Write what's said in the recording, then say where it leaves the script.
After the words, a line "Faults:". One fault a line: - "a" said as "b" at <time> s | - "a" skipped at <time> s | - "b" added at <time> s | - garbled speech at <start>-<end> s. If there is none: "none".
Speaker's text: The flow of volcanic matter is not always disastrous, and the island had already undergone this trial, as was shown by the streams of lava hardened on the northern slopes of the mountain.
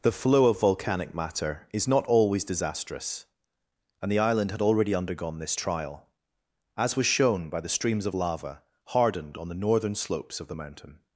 The flow of volcanic matter is not always disastrous, and the island had already undergone this trial, as was shown by the streams of lava hardened on the northern slopes of the mountain.
Faults:
none